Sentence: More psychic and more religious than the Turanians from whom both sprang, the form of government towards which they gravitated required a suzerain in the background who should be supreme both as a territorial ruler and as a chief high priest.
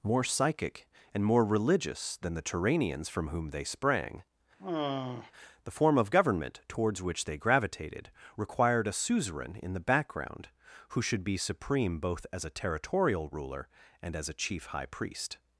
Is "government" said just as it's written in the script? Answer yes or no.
yes